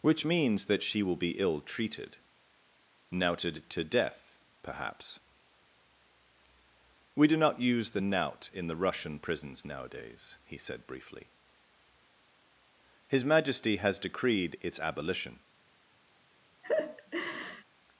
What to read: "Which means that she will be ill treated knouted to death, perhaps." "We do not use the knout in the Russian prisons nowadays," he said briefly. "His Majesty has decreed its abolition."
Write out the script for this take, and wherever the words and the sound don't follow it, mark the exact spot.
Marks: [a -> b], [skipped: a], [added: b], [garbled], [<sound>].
"Which means that she will be ill treated knouted to death, perhaps." "We do not use the knout in the Russian prisons nowadays," he said briefly. "His Majesty has decreed its abolition." [laugh]